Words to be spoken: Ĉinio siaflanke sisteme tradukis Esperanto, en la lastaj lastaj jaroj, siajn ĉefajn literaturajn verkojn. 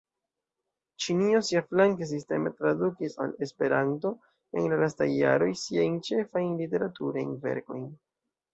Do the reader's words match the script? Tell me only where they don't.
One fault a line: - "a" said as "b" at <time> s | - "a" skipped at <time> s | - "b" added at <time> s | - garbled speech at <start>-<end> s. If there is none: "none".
- "al" added at 3.2 s
- "lastaj" skipped at 5.1 s